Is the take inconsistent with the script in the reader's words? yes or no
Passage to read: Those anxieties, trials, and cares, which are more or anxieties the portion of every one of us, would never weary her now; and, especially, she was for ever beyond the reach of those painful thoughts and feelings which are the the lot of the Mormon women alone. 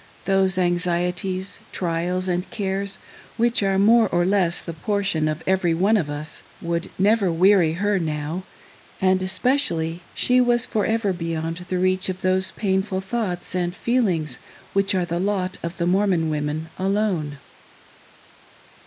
yes